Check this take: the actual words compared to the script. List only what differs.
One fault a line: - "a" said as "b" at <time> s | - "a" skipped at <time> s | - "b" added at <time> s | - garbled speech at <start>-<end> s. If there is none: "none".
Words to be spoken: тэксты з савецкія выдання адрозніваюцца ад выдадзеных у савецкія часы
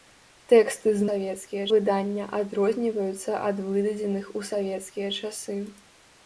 none